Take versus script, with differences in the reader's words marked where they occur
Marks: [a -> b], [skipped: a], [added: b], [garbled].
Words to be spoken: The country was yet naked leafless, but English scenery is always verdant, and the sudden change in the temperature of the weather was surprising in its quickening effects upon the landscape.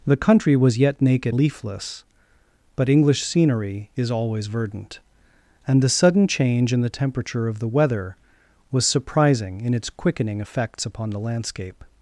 The country was yet naked leafless, but English scenery is always verdant, and the sudden change in the temperature of the weather was surprising in its quickening effects upon the landscape.